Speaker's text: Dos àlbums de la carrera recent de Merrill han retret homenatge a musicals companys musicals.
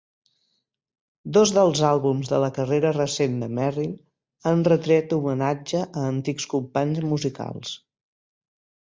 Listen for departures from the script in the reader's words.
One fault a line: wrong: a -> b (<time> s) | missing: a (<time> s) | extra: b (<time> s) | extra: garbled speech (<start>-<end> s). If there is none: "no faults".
extra: dels (1.6 s)
wrong: musicals -> antics (6.1 s)